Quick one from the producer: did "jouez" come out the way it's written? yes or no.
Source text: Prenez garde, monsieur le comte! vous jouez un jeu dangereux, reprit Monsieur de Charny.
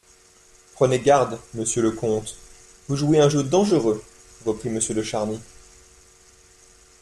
yes